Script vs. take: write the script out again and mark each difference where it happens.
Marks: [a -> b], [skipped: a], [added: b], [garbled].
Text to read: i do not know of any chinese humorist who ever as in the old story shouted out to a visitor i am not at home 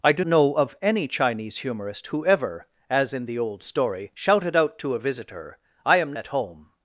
i do [skipped: not] know of any chinese humorist who ever as in the old story shouted out to a visitor i am [skipped: not] at home